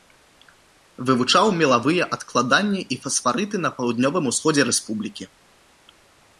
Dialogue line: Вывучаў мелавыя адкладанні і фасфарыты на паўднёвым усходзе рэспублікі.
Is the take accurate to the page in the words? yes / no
yes